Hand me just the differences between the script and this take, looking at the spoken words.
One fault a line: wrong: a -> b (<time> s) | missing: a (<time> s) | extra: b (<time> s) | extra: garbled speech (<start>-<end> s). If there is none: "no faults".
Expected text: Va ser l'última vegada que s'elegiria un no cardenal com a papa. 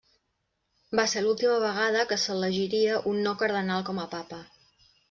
no faults